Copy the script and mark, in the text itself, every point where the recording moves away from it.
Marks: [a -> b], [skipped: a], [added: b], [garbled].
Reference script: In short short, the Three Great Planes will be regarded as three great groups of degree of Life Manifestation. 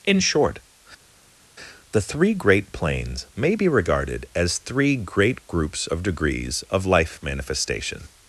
In short [skipped: short,] the Three Great Planes [will -> may] be regarded as three great groups of [degree -> degrees] of Life Manifestation.